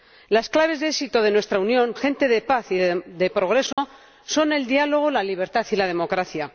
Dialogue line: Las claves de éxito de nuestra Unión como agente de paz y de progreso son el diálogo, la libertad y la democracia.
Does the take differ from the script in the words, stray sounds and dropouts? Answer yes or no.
yes